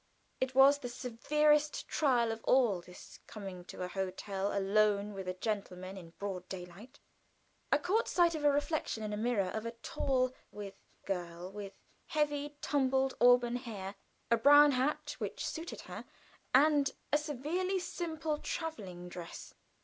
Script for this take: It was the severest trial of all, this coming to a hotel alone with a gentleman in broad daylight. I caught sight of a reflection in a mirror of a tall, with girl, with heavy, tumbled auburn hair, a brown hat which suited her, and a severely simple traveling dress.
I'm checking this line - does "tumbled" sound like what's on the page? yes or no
yes